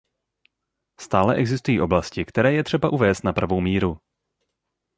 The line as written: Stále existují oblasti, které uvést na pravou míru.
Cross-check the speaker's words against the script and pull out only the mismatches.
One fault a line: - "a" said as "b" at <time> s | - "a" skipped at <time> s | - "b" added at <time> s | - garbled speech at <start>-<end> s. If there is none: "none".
- "je třeba" added at 2.5 s